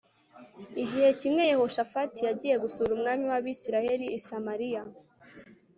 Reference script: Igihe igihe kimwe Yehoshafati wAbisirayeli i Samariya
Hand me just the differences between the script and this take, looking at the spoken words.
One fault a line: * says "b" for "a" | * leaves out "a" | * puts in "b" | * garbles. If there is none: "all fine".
* leaves out "igihe"
* puts in "yagiye gusura umwami"